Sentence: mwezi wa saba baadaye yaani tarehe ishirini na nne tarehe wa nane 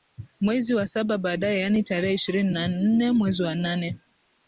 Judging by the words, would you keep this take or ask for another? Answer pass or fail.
fail